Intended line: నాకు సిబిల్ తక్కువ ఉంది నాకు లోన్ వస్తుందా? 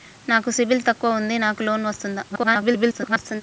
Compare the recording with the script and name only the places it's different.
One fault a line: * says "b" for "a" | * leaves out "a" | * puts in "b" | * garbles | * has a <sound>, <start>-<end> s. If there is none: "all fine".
* garbles